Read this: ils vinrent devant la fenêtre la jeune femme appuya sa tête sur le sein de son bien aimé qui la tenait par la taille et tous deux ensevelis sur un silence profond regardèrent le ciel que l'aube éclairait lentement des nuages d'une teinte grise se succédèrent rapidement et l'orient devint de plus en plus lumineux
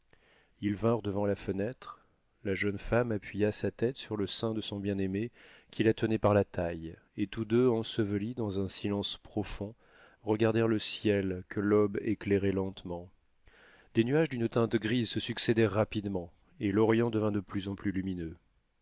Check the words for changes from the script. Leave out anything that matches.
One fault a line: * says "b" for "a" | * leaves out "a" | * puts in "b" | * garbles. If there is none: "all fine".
* says "dans" for "sur"